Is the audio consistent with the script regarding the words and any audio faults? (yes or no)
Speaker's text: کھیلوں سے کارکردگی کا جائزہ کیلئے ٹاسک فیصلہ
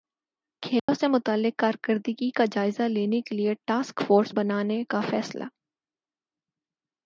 no